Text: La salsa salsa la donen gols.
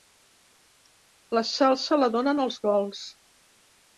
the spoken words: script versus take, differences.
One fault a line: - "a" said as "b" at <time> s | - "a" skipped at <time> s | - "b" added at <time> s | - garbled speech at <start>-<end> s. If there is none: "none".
- "salsa" skipped at 2.0 s
- "els" added at 2.5 s